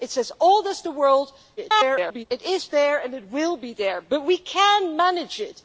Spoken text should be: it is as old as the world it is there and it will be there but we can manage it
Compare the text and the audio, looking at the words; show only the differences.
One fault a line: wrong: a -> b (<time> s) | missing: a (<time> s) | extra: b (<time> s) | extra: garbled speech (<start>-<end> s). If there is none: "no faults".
extra: garbled speech (1.6-2.3 s)